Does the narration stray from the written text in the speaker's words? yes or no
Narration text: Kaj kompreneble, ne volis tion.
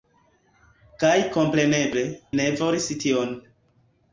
no